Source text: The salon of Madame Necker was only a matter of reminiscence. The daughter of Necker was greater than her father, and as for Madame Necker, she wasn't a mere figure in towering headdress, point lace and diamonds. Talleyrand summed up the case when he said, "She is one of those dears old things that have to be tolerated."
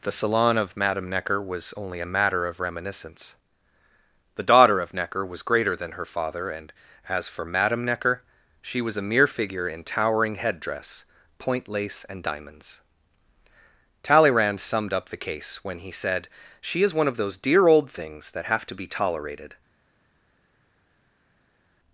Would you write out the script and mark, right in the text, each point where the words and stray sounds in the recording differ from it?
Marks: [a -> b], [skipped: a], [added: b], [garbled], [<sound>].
The salon of Madame Necker was only a matter of reminiscence. The daughter of Necker was greater than her father, and as for Madame Necker, she [wasn't -> was] a mere figure in towering headdress, point lace and diamonds. Talleyrand summed up the case when he said, "She is one of those [dears -> dear] old things that have to be tolerated."